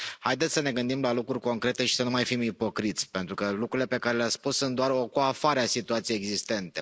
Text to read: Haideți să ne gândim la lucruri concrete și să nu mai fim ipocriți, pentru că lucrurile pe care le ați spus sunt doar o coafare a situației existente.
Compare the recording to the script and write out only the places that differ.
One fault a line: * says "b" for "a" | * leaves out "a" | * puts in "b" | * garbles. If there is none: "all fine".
all fine